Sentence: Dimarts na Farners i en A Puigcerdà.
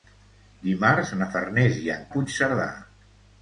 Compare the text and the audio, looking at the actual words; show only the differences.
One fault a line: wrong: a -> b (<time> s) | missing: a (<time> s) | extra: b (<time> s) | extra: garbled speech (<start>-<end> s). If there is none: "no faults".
no faults